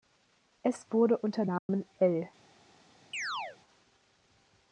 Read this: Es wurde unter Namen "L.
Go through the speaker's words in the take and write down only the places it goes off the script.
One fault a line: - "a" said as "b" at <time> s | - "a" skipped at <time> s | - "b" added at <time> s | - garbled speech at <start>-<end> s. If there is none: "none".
none